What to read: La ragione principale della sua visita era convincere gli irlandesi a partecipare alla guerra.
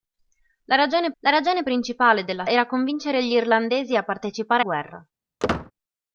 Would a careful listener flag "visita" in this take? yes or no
yes